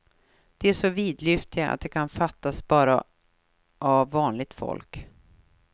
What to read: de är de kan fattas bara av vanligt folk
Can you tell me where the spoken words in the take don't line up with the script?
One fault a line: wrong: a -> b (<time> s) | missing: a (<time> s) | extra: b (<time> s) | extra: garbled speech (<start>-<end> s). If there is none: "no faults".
extra: så vidlyftiga att (0.7 s)